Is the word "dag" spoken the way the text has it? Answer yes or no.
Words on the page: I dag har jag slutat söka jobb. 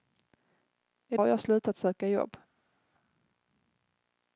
no